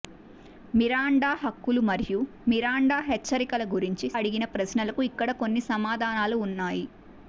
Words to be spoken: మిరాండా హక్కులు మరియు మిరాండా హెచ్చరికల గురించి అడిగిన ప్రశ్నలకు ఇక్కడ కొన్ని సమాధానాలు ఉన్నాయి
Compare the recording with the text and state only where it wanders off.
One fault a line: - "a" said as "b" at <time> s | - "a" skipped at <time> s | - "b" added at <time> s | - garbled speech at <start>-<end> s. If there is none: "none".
none